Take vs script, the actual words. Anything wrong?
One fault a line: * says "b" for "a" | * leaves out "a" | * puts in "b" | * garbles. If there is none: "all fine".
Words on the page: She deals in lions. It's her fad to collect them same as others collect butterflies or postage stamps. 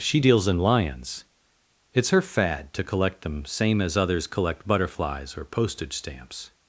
all fine